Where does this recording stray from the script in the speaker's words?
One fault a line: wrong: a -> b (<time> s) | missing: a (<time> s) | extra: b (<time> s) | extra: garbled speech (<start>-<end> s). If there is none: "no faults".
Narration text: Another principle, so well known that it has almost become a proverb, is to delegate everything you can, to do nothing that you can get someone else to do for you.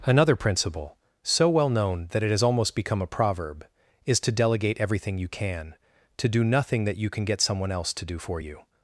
no faults